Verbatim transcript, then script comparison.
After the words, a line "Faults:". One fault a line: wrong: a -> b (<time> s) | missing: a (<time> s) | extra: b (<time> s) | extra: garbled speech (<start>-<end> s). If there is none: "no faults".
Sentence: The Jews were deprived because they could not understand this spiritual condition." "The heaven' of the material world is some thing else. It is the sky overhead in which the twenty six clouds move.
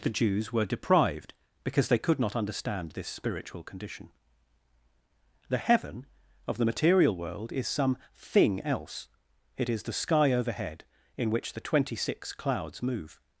The Jews were deprived because they could not understand this spiritual condition." "The heaven' of the material world is some thing else. It is the sky overhead in which the twenty six clouds move.
Faults:
no faults